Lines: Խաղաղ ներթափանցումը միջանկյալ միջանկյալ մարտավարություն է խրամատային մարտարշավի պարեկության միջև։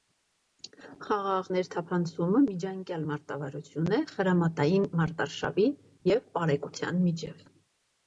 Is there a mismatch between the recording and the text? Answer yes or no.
yes